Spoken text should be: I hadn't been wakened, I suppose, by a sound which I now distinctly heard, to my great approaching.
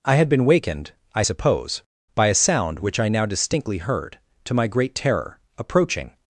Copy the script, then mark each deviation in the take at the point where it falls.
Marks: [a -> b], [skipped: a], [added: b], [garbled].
I [hadn't -> had] been wakened, I suppose, by a sound which I now distinctly heard, to my great [added: terror] approaching.